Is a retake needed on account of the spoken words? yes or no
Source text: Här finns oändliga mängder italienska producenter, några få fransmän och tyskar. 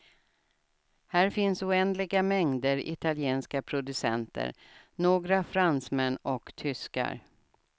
yes